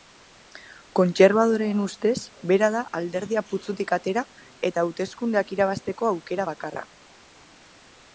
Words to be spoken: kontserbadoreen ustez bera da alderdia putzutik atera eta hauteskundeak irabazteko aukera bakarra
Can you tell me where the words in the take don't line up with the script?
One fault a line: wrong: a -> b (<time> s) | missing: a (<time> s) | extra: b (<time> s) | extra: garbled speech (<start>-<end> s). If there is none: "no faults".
no faults